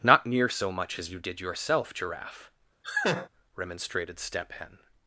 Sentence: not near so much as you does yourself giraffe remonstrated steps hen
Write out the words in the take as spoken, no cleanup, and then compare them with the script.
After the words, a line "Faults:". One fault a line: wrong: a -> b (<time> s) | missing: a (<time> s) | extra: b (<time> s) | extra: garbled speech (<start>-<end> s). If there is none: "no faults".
not near so much as you did yourself giraffe remonstrated step hen
Faults:
wrong: does -> did (1.2 s)
wrong: steps -> step (4.2 s)